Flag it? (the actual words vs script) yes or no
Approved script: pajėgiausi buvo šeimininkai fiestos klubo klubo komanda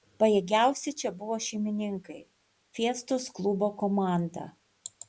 yes